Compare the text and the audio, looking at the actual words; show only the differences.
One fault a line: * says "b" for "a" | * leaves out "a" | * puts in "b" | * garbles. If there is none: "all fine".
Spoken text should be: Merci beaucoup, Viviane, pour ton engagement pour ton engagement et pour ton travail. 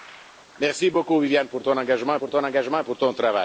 all fine